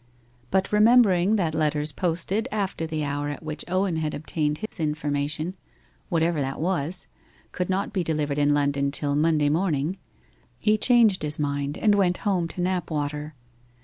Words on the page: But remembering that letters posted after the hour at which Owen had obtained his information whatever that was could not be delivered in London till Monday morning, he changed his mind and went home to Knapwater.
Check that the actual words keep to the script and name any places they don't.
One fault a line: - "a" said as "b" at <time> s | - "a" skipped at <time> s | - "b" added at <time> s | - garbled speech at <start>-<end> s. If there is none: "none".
none